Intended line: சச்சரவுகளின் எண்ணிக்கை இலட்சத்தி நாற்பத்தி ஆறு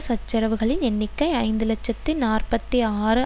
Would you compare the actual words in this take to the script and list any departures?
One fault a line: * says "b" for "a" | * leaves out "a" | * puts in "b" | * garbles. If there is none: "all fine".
* puts in "ஐந்து"